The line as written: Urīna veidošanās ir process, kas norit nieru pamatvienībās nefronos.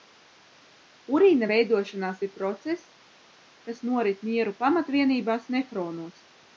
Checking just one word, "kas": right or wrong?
right